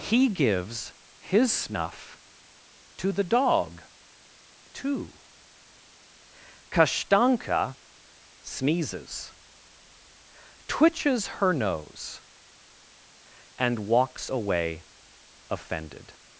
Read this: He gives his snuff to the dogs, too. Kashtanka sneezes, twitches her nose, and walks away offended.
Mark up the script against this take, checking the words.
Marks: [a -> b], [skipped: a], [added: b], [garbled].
He gives his snuff to the [dogs, -> dog] too. Kashtanka sneezes, twitches her nose, and walks away offended.